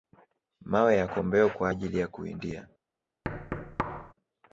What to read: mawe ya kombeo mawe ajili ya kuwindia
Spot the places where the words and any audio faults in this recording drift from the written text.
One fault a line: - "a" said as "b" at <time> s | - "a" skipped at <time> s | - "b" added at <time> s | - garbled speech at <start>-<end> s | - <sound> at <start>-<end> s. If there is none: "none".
- "mawe" said as "kwa" at 1.5 s
- thud at 3.2-4.1 s